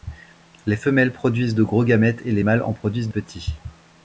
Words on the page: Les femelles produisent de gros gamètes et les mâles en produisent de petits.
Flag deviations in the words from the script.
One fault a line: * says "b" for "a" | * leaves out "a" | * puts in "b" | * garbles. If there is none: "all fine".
* leaves out "de"